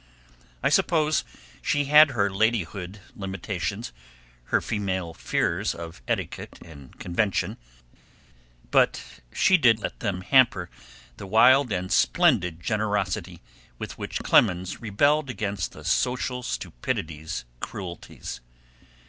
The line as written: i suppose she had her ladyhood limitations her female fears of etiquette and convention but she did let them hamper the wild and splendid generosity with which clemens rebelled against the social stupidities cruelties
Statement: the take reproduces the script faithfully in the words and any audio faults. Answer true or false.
true